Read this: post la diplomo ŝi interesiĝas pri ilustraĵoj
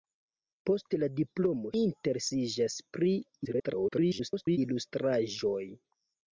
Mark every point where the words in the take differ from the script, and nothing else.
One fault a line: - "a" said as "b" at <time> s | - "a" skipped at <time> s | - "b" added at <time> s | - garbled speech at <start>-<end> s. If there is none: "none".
- "ŝi" skipped at 1.7 s
- garbled speech at 3.4-4.6 s